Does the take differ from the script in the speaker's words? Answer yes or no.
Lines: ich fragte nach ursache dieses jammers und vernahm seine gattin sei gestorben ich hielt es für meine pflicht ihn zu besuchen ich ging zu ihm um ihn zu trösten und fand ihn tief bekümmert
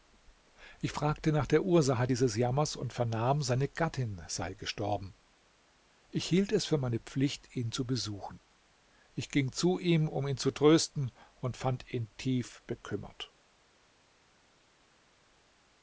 yes